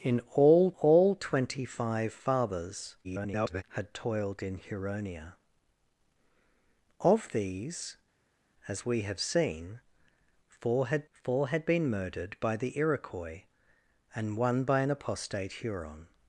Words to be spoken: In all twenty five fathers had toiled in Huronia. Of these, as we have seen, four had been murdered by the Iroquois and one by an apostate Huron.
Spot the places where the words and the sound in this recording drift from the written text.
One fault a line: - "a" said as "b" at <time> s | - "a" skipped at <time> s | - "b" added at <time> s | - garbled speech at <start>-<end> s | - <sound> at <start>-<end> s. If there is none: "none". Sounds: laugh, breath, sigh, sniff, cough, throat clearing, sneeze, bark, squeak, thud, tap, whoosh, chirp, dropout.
- "all" added at 0.8 s
- garbled speech at 3.0-3.6 s
- "four had" added at 11.1 s